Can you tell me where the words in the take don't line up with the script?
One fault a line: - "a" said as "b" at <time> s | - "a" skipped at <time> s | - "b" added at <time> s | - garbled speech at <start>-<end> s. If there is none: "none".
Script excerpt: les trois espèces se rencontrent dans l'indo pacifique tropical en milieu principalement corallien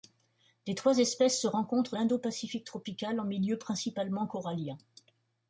- "dans" skipped at 1.9 s